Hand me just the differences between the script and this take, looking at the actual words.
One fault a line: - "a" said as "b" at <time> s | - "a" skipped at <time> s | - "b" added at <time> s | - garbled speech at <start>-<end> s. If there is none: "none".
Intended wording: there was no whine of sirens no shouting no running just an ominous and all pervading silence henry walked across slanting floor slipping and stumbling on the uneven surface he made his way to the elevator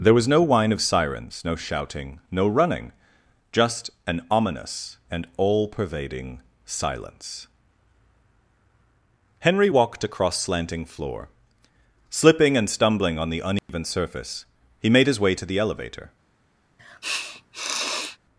none